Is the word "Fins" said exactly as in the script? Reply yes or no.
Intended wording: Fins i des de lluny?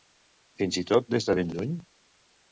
yes